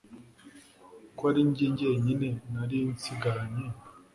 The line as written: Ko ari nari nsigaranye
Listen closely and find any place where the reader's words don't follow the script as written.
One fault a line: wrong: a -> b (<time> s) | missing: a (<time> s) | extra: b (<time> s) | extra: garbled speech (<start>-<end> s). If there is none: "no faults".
extra: njye jyenyine (1.5 s)